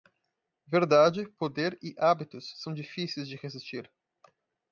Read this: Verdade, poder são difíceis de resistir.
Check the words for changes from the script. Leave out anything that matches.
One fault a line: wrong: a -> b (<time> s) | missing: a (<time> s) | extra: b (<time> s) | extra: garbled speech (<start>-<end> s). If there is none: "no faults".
extra: e hábitos (1.8 s)